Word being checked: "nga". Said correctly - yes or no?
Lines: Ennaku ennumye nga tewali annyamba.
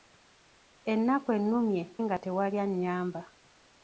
yes